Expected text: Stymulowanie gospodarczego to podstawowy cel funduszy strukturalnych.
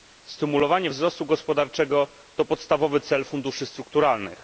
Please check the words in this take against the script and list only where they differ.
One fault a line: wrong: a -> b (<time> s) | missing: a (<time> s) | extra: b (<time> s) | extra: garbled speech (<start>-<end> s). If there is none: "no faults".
extra: wzrostu (0.9 s)